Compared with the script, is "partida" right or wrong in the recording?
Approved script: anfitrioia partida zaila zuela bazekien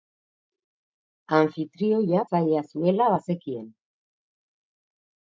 wrong